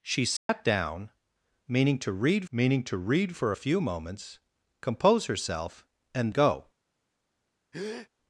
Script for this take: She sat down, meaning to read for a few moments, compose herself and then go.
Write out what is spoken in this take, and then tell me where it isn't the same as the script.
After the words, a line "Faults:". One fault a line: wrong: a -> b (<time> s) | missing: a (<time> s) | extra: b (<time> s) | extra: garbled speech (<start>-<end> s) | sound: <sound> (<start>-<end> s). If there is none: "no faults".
She sat down, meaning to read meaning to read for a few moments, compose herself and go.
Faults:
sound: dropout (0.4-0.5 s)
extra: meaning to read (2.5 s)
missing: then (6.3 s)
sound: breath (7.7-8.1 s)